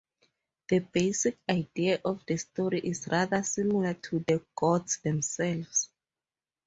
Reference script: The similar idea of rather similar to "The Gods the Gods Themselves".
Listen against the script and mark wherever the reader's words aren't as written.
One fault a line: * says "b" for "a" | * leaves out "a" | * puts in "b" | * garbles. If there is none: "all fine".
* says "basic" for "similar"
* puts in "the story is"
* leaves out "the Gods"